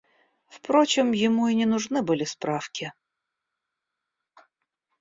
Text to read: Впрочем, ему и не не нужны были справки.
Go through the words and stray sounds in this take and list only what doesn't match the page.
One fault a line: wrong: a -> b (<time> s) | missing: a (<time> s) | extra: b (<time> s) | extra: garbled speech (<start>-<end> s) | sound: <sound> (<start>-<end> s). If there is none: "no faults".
missing: не (1.7 s)